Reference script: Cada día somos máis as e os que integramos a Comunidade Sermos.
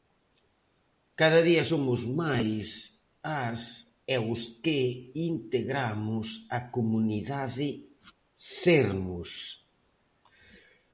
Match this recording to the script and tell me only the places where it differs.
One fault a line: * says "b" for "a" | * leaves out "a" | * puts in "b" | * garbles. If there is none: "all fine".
all fine